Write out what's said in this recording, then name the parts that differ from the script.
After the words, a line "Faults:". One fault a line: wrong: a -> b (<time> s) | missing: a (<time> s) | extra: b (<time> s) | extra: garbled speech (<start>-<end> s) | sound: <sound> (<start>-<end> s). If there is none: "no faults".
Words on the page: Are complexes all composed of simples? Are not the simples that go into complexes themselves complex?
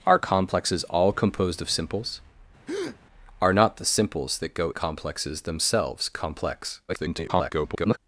Are complexes all composed of simples? Are not the simples that go complexes themselves complex? [garbled]
Faults:
sound: breath (2.7-3.0 s)
missing: into (4.7 s)
extra: garbled speech (6.9-8.0 s)